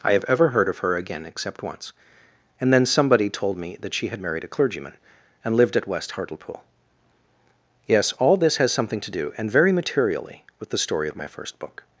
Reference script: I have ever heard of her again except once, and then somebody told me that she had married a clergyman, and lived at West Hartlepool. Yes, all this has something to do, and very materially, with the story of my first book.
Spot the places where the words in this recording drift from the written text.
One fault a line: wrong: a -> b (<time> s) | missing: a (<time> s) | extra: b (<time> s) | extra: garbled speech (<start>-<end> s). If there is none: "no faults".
no faults